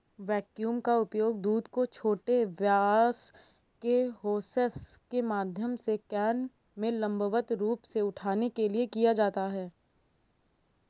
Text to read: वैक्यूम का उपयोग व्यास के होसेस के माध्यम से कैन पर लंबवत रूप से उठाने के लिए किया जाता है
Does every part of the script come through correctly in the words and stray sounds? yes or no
no